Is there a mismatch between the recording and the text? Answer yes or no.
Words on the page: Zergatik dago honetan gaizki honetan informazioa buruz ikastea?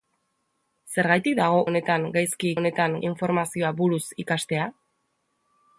no